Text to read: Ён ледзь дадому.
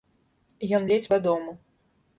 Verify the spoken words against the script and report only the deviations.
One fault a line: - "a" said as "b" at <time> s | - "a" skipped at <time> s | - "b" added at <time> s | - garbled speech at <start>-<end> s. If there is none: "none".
none